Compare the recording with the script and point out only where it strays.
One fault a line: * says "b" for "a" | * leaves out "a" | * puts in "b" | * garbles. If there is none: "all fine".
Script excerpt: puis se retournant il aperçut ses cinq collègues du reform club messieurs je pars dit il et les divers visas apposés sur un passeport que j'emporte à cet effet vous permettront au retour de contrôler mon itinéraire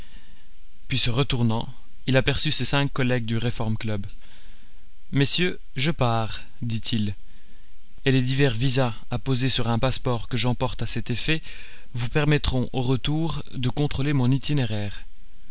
all fine